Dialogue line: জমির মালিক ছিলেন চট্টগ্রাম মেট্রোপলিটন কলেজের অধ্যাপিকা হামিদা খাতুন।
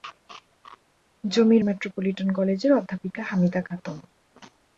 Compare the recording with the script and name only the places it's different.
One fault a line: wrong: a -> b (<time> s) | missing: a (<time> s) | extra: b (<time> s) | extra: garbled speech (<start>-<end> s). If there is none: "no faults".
missing: মালিক ছিলেন চট্টগ্রাম (1.6 s)